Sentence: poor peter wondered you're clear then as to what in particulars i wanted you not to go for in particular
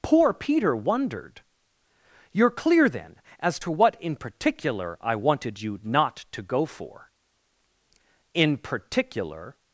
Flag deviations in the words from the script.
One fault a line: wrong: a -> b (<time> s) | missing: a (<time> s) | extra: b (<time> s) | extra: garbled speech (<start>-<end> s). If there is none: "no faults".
wrong: particulars -> particular (4.2 s)